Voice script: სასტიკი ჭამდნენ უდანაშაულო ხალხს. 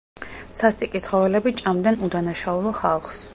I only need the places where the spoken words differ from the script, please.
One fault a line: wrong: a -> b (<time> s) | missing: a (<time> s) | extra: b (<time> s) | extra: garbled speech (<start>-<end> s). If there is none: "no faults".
extra: ცხოველები (1.1 s)